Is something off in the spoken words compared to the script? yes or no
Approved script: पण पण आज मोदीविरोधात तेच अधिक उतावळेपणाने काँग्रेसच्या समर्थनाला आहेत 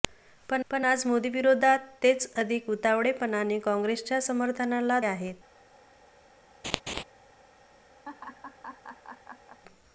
no